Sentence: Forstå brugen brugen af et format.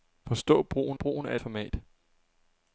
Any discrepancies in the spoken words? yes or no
no